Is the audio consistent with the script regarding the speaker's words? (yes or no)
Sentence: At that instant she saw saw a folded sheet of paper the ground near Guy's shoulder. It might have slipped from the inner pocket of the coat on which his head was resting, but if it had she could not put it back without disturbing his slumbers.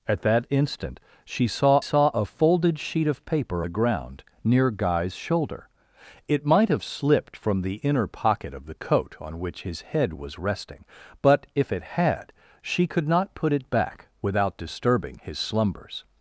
yes